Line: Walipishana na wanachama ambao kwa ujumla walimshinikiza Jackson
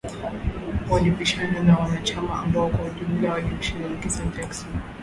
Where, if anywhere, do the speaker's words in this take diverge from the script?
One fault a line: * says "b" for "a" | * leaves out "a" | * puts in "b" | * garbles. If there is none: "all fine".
all fine